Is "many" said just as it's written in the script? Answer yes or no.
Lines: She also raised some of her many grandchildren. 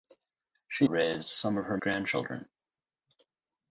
no